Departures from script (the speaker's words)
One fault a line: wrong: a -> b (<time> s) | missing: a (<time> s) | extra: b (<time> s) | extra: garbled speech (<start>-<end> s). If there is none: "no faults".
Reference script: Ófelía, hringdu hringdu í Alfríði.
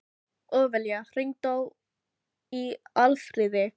missing: hringdu (1.5 s)